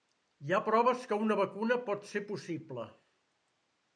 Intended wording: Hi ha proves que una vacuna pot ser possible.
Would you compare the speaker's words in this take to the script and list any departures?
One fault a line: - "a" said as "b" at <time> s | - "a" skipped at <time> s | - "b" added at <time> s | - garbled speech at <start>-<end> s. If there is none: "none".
none